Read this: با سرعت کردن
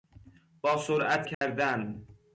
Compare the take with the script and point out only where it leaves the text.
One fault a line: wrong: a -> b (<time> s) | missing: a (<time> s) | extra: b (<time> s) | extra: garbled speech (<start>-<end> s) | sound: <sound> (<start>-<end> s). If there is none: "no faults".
sound: dropout (1.3-1.4 s)